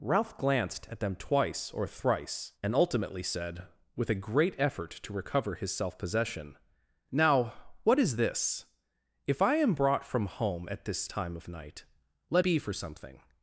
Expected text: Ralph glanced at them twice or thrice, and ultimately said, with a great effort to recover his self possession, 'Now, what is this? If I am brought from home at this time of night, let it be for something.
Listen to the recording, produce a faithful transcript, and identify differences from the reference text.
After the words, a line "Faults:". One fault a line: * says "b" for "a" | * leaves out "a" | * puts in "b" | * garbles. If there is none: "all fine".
Ralph glanced at them twice or thrice, and ultimately said, with a great effort to recover his self possession, 'Now, what is this? If I am brought from home at this time of night, let be for something.
Faults:
* leaves out "it"